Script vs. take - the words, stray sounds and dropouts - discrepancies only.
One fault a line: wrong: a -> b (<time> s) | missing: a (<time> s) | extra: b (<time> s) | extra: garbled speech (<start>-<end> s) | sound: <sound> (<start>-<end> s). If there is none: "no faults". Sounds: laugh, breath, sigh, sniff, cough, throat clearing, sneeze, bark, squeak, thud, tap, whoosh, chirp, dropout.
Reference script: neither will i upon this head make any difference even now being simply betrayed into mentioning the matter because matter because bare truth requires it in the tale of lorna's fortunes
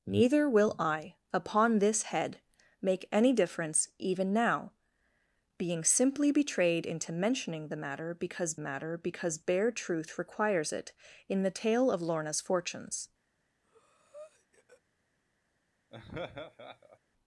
sound: breath (13.6-14.8 s)
sound: laugh (15.9-17.0 s)